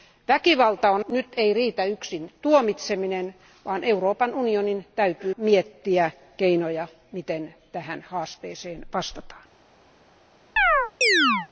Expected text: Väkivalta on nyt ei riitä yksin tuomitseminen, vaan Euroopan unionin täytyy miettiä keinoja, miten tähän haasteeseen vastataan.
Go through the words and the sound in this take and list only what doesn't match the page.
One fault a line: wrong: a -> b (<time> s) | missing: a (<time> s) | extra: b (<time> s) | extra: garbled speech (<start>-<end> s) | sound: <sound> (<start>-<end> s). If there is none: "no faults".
sound: chirp (10.6-11.5 s)